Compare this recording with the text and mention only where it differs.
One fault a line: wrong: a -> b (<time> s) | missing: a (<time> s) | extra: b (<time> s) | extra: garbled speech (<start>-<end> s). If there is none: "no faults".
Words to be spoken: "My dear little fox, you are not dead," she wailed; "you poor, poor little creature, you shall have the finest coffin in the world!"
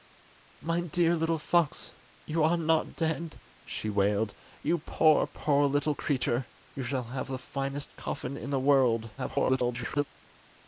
extra: garbled speech (9.2-10.0 s)